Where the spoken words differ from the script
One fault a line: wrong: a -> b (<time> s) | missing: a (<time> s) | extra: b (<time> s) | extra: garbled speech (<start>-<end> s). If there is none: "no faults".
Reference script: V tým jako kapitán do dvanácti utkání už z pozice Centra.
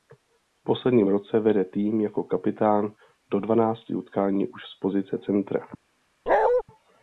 extra: posledním roce vede (0.6 s)